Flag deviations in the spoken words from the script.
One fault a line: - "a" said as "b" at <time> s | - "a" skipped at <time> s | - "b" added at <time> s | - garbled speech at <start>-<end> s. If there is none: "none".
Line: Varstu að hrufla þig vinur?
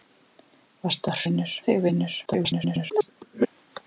- "hrufla" said as "vinur" at 1.2 s
- garbled speech at 2.3-3.5 s